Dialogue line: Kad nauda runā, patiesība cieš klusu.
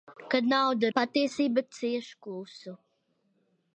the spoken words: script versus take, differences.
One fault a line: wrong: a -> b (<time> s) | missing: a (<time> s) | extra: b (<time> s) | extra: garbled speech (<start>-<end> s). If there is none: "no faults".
missing: runā (0.9 s)